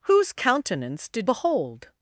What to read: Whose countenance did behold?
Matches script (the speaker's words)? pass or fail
pass